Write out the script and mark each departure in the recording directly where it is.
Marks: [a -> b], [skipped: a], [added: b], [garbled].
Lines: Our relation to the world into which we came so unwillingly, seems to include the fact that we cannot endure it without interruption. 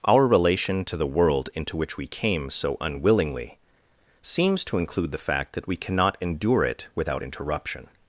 Our relation to the world into which we came so unwillingly, seems to include the fact that we cannot endure it without interruption.